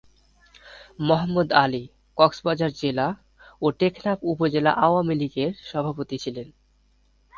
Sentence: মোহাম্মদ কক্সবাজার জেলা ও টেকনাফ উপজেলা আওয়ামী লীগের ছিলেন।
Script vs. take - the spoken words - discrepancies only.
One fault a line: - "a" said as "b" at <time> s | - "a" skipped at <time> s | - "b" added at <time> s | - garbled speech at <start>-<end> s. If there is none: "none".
- "আলী" added at 1.6 s
- "সভাপতি" added at 5.7 s